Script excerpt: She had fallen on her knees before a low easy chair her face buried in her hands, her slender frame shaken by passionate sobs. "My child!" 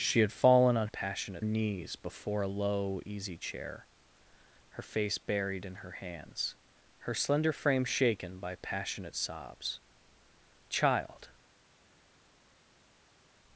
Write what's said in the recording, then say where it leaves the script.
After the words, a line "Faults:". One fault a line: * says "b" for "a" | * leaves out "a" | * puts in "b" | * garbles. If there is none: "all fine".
She had fallen on passionate knees before a low easy chair her face buried in her hands, her slender frame shaken by passionate sobs. "Child!"
Faults:
* says "passionate" for "her"
* leaves out "My"